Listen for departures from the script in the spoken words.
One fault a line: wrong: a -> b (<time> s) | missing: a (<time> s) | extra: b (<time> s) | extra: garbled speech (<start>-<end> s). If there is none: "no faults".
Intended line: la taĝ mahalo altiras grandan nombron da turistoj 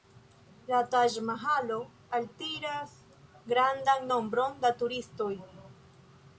no faults